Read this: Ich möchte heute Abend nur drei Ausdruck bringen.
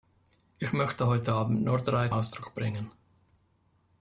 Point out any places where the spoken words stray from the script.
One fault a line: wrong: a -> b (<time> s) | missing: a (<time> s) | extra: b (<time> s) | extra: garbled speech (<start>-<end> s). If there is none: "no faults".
no faults